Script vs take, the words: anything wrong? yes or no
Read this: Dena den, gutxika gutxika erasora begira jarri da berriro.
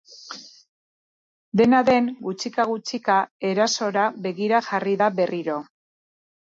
no